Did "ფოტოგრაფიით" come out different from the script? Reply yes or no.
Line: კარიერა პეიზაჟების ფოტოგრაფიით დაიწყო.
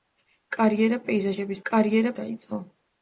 yes